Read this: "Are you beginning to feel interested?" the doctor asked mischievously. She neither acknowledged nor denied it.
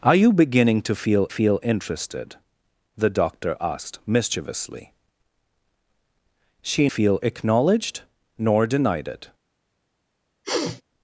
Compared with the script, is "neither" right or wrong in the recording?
wrong